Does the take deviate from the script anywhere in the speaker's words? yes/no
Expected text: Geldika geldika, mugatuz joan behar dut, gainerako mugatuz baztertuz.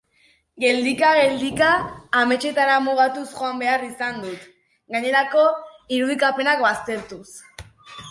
yes